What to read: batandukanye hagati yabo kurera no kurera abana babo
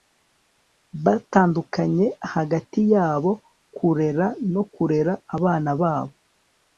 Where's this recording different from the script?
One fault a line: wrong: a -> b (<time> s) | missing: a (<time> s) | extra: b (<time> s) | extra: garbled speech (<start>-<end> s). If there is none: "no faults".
no faults